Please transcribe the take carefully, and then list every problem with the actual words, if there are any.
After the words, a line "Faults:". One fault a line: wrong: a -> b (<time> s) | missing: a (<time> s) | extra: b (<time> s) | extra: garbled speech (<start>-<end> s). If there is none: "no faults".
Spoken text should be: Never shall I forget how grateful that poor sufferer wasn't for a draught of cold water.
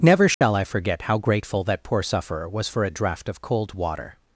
Never shall I forget how grateful that poor sufferer was for a draught of cold water.
Faults:
wrong: wasn't -> was (2.5 s)